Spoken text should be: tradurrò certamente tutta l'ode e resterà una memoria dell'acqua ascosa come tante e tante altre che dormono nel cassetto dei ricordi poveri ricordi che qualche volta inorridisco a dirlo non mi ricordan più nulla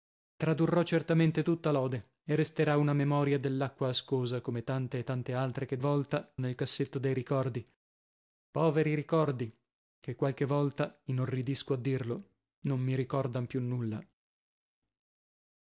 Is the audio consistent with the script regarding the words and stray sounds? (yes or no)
no